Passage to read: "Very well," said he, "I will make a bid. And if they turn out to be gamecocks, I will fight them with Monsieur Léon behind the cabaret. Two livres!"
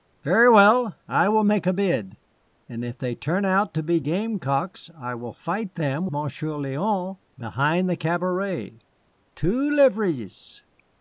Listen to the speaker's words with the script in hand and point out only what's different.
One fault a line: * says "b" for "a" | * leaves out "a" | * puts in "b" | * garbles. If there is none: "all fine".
* leaves out "said he"
* leaves out "with"